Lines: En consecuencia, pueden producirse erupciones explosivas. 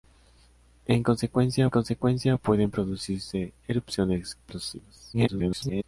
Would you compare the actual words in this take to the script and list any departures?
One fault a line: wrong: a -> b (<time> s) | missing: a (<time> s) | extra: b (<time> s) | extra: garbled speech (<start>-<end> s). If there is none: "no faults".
extra: consecuencia (1.7 s)
extra: garbled speech (5.1-5.8 s)